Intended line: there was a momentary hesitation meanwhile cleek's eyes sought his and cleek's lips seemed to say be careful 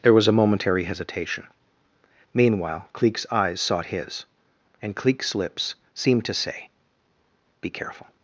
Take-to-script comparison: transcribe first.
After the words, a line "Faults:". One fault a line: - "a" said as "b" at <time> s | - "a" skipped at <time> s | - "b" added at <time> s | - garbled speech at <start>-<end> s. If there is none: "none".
there was a momentary hesitation meanwhile cleek's eyes sought his and cleek's lips seemed to say be careful
Faults:
none